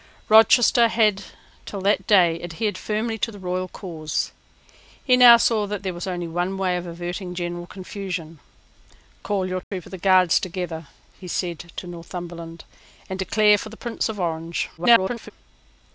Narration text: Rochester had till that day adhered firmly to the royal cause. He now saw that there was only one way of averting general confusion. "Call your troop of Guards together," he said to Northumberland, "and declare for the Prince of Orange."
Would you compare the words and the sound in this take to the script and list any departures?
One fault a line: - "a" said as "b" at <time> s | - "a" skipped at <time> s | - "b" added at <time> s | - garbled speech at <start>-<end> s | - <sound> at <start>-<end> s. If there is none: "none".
- dropout at 9.6-9.7 s
- garbled speech at 14.8-15.3 s